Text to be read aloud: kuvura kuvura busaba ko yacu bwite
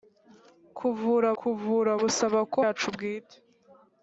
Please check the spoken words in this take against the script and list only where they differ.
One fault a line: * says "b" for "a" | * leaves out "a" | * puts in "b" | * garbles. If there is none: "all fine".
all fine